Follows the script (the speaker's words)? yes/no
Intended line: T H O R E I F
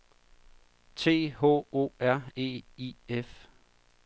yes